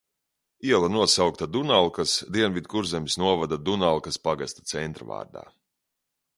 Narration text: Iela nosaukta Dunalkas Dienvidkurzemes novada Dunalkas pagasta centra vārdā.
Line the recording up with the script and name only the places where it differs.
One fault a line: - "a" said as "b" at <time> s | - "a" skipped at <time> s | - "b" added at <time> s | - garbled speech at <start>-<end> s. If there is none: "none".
none